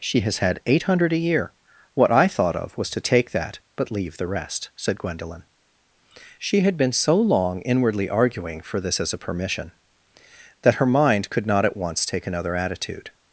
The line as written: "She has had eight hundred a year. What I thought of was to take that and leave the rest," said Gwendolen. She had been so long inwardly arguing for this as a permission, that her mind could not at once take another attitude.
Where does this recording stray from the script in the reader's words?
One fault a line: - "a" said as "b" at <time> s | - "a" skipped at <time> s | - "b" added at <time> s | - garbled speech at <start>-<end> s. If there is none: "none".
- "and" said as "but" at 3.8 s